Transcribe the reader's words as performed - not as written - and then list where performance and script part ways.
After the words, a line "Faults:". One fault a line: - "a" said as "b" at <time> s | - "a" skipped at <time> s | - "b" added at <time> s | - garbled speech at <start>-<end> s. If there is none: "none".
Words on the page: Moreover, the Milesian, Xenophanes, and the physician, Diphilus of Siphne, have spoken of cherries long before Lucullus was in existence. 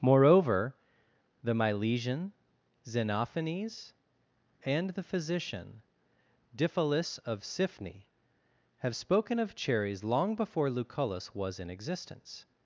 Moreover, the Milesian, Xenophanes, and the physician, Diphilus of Siphne, have spoken of cherries long before Lucullus was in existence.
Faults:
none